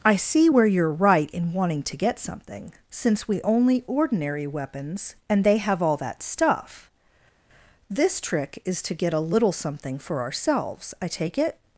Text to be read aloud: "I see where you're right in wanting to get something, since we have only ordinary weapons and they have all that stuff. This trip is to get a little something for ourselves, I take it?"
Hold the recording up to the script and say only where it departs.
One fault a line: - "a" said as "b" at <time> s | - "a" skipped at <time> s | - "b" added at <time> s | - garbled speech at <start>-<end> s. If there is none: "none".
- "have" skipped at 3.4 s
- "trip" said as "trick" at 8.2 s